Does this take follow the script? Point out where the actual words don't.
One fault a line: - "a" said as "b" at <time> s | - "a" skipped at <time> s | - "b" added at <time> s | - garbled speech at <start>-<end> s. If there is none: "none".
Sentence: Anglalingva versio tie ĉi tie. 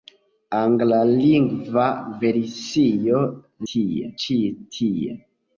none